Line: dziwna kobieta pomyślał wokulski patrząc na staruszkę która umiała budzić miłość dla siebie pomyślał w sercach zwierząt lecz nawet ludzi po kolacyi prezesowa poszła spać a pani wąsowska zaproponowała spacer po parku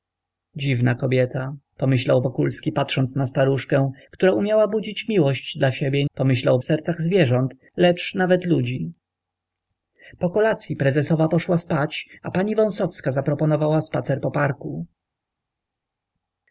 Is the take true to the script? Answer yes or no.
yes